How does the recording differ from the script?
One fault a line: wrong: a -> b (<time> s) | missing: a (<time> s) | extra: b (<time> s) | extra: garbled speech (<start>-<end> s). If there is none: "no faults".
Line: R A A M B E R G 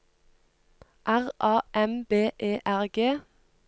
missing: A (1.6 s)